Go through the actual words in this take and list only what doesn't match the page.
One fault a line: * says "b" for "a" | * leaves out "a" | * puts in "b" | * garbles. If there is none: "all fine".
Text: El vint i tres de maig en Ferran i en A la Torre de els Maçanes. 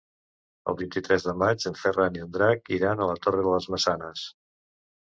* puts in "Drac iran"
* says "les" for "els"